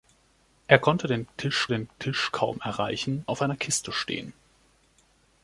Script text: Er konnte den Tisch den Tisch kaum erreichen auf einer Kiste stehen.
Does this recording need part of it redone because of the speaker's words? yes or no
no